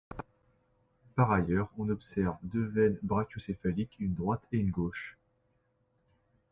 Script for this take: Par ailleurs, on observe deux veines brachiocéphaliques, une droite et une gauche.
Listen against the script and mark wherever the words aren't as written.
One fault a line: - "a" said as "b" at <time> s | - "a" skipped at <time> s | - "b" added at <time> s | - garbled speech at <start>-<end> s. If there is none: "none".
none